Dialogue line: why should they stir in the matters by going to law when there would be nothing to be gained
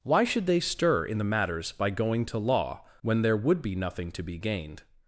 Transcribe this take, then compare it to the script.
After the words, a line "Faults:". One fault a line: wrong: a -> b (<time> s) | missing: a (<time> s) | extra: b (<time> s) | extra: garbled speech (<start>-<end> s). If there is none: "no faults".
why should they stir in the matters by going to law when there would be nothing to be gained
Faults:
no faults